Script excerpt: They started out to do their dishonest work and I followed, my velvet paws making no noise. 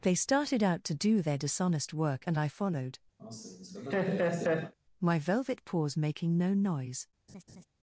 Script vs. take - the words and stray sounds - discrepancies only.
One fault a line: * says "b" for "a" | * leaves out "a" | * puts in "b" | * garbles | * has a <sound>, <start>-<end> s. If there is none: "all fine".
* has a laugh, 3.2-4.7 s
* has a laugh, 7.3-7.7 s